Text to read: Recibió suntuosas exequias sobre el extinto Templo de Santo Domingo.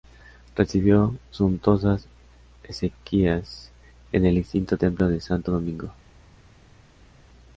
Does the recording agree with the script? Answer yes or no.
no